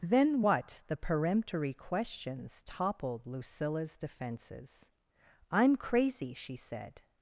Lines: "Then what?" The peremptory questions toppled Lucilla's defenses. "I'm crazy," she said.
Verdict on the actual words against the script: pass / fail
pass